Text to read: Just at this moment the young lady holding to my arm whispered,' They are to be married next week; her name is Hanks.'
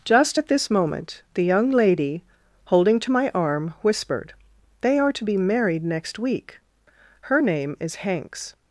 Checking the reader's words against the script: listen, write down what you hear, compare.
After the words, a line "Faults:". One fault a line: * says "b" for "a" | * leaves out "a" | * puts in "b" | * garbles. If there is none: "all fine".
Just at this moment the young lady holding to my arm whispered,' They are to be married next week; her name is Hanks.'
Faults:
all fine